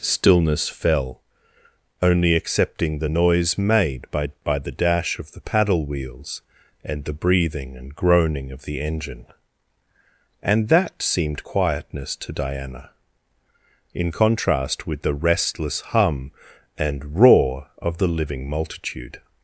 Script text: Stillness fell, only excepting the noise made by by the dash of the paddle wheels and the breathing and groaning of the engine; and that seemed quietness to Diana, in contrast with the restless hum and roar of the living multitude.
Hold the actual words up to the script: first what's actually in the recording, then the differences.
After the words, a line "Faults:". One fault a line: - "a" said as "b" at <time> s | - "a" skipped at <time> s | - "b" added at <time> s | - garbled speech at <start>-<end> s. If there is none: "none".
Stillness fell, only excepting the noise made by by the dash of the paddle wheels and the breathing and groaning of the engine; and that seemed quietness to Diana, in contrast with the restless hum and roar of the living multitude.
Faults:
none